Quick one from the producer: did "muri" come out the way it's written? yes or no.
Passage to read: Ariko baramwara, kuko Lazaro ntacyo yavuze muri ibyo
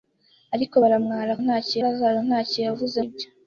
no